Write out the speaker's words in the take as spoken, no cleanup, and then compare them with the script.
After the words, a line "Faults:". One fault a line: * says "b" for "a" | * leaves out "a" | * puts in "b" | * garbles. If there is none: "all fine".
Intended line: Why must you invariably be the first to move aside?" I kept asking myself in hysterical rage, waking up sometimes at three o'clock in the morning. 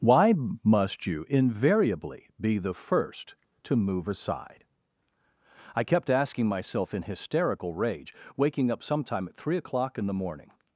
Why must you invariably be the first to move aside?" I kept asking myself in hysterical rage, waking up sometime at three o'clock in the morning.
Faults:
* says "sometime" for "sometimes"